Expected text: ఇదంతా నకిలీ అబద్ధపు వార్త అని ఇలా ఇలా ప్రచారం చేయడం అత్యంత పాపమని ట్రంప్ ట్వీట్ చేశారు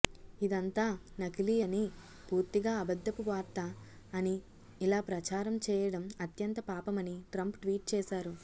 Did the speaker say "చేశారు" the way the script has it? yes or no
yes